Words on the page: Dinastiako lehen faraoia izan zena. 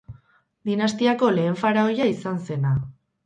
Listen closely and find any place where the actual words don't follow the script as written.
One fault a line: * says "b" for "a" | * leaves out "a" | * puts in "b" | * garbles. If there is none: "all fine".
all fine